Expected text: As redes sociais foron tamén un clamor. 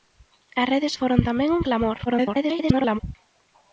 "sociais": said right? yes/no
no